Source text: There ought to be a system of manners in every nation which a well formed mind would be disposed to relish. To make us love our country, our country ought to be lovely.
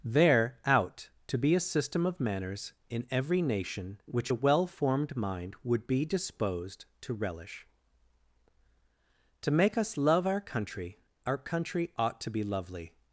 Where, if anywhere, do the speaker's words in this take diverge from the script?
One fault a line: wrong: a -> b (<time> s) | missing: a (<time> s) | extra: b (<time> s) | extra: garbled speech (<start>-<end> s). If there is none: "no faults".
wrong: ought -> out (0.7 s)